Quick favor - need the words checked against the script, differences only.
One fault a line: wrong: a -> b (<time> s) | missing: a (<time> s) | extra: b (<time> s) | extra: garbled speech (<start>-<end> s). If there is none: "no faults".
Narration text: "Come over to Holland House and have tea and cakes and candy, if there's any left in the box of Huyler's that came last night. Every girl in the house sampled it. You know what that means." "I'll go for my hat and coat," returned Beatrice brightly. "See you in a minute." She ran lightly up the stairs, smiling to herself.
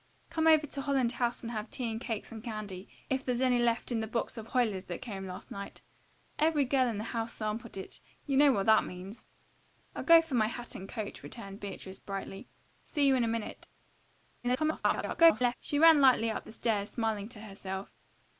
extra: garbled speech (14.4-15.5 s)